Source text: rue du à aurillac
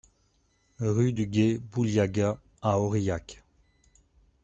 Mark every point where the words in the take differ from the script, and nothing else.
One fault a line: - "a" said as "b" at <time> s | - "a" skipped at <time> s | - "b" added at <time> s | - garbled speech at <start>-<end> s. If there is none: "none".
- "gué bouliaga" added at 1.3 s